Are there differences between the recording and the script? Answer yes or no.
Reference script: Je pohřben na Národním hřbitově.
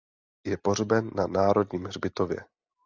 no